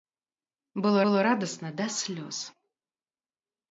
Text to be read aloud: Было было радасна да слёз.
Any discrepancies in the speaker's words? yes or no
no